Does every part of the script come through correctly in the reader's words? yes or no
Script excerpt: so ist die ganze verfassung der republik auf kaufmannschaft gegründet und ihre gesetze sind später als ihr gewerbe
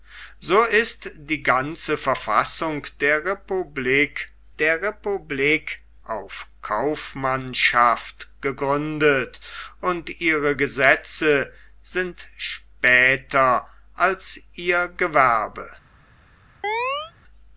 no